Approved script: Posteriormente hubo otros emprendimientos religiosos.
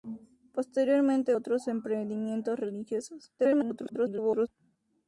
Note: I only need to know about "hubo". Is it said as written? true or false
false